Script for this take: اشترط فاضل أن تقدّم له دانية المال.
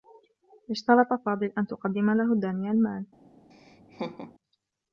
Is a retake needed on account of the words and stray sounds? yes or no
yes